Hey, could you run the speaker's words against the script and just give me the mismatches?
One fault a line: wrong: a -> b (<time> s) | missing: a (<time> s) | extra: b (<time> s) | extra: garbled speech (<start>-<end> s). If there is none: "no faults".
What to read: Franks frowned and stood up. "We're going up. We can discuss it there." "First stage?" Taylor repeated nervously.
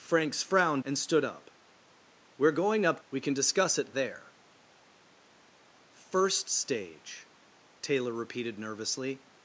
no faults